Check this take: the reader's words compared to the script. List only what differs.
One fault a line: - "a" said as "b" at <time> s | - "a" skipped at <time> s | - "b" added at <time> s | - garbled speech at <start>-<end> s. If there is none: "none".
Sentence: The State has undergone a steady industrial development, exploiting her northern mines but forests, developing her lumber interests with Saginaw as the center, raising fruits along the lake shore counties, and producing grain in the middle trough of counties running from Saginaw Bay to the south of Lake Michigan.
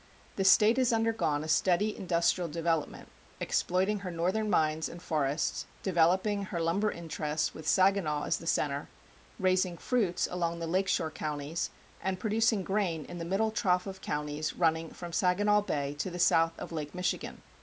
- "but" said as "and" at 4.9 s